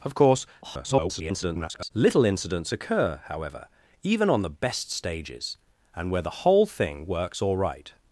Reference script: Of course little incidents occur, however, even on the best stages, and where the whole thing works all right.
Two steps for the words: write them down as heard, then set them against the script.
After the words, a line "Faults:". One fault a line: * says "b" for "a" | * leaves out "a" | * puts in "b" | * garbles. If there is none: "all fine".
Of course [garbled] little incidents occur, however, even on the best stages, and where the whole thing works all right.
Faults:
* garbles